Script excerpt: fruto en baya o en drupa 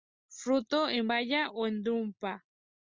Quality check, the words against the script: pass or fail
pass